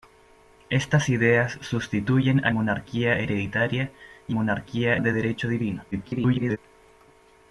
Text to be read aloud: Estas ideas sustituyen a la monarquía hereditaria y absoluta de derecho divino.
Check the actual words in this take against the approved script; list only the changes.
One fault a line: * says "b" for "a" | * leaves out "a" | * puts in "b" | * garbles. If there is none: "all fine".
* leaves out "la"
* says "monarquía" for "absoluta"
* garbles